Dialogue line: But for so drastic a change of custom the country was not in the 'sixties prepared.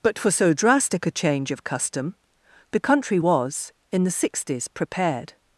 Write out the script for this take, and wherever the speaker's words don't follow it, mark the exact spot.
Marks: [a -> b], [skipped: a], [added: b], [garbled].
But for so drastic a change of custom the country was [skipped: not] in the 'sixties prepared.